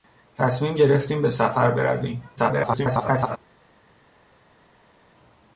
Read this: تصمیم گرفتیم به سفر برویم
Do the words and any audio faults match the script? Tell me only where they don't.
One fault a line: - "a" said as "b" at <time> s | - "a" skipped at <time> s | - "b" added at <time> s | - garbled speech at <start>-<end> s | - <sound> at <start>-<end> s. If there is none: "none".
- garbled speech at 2.4-3.4 s